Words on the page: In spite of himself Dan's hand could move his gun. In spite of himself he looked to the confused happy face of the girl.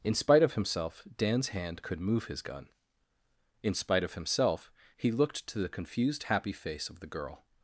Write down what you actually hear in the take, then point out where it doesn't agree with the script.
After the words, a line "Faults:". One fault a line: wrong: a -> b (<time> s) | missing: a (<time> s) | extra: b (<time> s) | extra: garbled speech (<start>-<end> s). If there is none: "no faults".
In spite of himself Dan's hand could move his gun. In spite of himself he looked to the confused happy face of the girl.
Faults:
no faults